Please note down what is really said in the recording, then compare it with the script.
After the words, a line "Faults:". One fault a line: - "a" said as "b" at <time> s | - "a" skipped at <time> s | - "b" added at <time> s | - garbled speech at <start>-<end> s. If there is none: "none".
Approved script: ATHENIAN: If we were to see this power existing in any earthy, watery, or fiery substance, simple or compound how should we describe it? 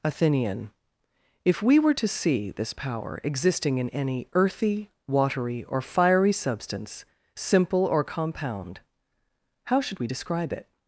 ATHENIAN: If we were to see this power existing in any earthy, watery, or fiery substance, simple or compound how should we describe it?
Faults:
none